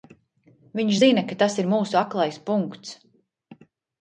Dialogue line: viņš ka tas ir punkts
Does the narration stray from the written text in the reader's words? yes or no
yes